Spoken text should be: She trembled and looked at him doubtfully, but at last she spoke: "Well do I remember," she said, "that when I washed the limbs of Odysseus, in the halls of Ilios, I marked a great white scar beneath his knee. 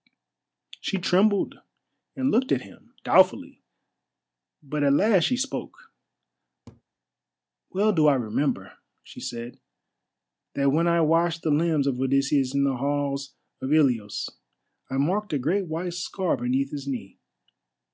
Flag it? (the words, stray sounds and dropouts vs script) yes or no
yes